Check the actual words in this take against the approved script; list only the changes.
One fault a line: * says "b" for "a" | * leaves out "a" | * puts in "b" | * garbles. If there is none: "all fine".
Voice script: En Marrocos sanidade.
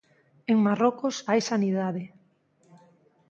* puts in "hai"